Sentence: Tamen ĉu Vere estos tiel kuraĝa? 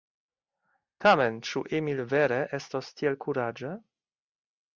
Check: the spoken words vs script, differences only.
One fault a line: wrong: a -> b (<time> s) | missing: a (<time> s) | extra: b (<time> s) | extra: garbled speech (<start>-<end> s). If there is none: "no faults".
extra: Emil (1.8 s)